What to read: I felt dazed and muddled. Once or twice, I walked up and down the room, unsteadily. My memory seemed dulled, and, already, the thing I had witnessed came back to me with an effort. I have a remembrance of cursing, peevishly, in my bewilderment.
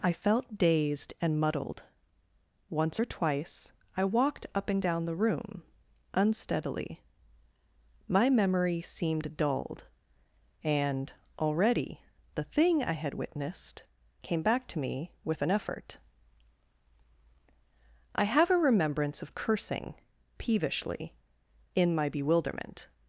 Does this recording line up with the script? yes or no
yes